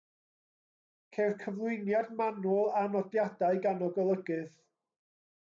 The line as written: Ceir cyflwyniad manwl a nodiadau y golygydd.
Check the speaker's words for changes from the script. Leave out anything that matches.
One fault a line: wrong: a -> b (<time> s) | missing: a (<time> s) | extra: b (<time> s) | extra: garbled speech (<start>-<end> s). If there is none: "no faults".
extra: gan (3.7 s)